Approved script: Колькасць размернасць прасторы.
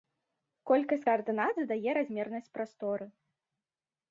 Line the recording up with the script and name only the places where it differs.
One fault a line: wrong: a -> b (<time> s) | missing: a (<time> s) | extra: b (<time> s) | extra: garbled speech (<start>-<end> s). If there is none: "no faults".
extra: каардынат задае (1.1 s)